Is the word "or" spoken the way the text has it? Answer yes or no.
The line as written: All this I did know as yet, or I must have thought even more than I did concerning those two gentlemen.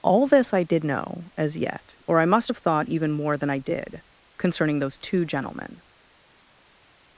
yes